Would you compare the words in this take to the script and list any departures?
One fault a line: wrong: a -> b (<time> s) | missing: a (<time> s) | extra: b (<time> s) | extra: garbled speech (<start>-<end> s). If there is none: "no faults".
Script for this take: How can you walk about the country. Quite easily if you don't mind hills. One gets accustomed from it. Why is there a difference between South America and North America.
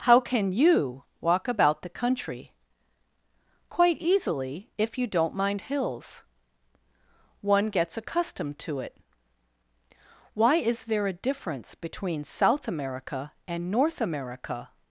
wrong: from -> to (8.6 s)